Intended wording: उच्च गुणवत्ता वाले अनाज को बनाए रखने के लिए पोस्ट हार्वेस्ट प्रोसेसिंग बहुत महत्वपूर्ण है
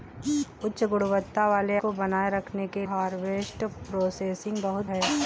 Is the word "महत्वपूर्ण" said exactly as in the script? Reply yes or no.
no